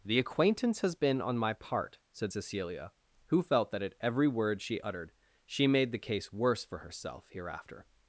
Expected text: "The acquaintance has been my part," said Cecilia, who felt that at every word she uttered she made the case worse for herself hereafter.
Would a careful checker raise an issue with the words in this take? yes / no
yes